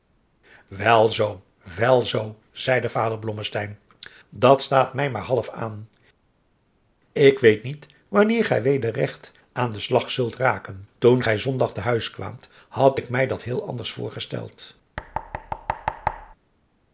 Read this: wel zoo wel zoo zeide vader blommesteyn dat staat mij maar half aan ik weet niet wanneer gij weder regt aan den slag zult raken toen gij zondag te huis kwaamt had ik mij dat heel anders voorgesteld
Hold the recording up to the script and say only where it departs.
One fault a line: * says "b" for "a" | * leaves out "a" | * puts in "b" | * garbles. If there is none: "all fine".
all fine